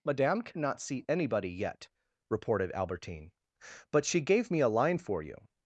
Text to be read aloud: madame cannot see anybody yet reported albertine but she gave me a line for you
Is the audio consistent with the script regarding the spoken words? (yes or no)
yes